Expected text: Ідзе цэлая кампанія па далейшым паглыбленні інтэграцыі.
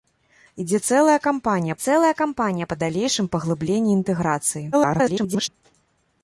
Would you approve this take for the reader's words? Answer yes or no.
no